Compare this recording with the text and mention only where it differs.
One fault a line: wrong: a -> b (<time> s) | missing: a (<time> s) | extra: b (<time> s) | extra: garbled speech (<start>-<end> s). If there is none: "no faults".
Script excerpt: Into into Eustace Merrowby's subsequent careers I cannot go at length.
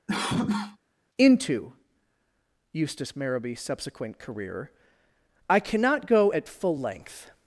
missing: into (1.7 s)
wrong: careers -> career (4.2 s)
extra: full (6.5 s)